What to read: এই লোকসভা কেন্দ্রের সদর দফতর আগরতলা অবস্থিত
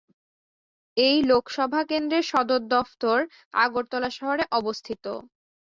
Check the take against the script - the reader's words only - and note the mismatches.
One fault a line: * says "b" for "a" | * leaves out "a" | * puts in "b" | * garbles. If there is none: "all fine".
* puts in "শহরে"